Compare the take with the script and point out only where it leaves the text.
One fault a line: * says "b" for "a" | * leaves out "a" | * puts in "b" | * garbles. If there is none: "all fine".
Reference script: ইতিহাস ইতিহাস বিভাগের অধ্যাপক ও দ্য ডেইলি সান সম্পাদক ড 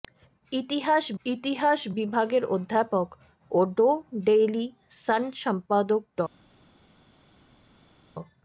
all fine